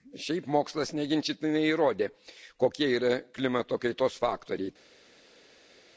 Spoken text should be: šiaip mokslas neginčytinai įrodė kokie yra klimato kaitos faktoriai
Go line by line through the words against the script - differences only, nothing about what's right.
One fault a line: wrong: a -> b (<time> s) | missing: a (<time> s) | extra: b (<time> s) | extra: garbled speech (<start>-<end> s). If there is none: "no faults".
no faults